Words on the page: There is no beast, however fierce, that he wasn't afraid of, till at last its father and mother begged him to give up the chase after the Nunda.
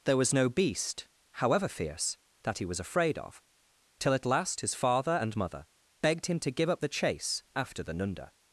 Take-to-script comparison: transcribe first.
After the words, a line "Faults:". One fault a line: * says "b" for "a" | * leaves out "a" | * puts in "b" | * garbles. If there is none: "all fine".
There was no beast, however fierce, that he was afraid of, till at last his father and mother begged him to give up the chase after the Nunda.
Faults:
* says "was" for "is"
* says "was" for "wasn't"
* says "his" for "its"